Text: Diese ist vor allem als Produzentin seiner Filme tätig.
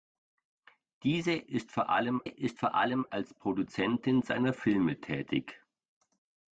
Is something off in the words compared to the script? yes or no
yes